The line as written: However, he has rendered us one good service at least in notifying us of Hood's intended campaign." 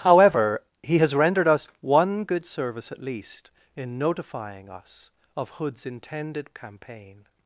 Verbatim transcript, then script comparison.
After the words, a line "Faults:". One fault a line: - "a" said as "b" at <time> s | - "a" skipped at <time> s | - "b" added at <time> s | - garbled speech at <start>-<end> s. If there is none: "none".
However, he has rendered us one good service at least in notifying us of Hood's intended campaign."
Faults:
none